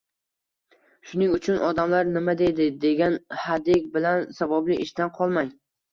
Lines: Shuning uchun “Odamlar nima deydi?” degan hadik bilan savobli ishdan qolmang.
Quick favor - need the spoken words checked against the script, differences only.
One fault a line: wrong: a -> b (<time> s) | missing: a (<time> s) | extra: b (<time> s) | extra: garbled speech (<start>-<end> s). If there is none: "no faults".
no faults